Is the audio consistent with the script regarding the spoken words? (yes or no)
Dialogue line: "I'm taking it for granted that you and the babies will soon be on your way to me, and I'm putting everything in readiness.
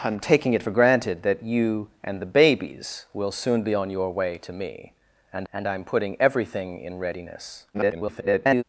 no